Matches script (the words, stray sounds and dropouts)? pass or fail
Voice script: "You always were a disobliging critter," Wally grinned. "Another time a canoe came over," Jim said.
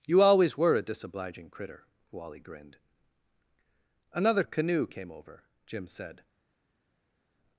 fail